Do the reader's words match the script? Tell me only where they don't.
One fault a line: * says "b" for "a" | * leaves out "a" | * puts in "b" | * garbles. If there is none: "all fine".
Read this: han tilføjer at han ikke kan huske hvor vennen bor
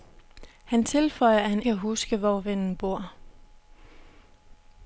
* leaves out "ikke"